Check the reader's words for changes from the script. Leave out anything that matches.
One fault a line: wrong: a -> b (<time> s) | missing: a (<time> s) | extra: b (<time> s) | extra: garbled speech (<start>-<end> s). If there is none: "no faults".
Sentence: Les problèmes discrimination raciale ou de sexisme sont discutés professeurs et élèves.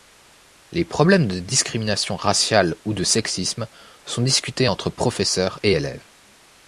extra: de (1.3 s)
extra: entre (4.6 s)